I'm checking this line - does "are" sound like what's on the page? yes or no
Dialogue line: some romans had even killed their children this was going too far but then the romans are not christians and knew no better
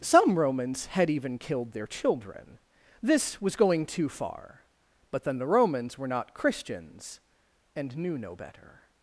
no